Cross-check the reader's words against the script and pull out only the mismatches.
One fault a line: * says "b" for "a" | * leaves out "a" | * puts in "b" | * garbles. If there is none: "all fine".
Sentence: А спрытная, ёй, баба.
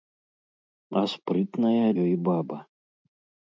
all fine